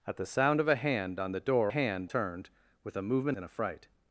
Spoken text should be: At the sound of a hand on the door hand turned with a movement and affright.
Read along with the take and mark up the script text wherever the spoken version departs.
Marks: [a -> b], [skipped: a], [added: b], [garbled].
At the sound of a hand on the door hand turned with a movement and affright.